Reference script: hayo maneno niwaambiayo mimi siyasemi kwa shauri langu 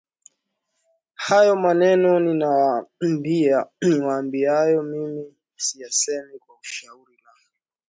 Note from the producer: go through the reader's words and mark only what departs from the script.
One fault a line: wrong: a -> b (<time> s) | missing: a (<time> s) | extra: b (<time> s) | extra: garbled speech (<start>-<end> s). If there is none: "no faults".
no faults